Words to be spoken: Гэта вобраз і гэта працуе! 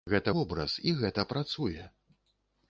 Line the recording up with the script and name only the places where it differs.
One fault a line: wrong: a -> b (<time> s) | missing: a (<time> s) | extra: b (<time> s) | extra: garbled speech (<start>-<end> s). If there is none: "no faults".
no faults